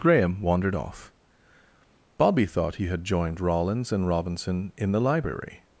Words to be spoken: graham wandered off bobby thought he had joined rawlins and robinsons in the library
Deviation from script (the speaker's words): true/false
true